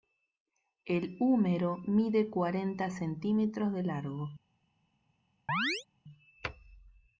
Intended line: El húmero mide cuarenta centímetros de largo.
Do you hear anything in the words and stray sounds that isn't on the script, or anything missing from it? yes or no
yes